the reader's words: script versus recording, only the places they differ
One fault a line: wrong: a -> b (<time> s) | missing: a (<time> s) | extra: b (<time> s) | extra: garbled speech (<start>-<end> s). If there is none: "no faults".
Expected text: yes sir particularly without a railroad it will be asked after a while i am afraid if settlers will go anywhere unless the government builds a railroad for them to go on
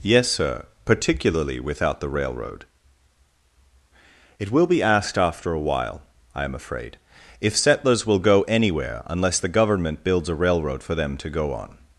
wrong: a -> the (2.0 s)